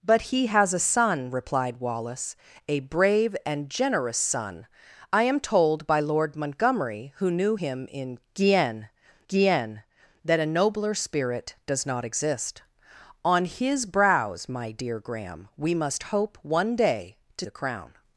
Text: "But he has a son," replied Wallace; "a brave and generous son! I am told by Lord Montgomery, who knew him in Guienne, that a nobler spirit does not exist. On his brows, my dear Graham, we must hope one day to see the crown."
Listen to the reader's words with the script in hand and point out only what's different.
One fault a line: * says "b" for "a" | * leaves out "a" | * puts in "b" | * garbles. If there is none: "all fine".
* puts in "Guienne"
* leaves out "see"